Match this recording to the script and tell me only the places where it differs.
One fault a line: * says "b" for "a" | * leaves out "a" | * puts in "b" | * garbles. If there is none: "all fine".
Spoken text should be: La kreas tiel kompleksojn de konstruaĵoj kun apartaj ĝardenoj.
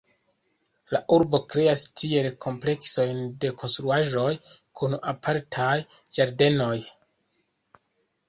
* puts in "urbo"